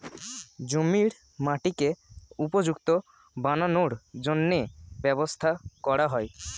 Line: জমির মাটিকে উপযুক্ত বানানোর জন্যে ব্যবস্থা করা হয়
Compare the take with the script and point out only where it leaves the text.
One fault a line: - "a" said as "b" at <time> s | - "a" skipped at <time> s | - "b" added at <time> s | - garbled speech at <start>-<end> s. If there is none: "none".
none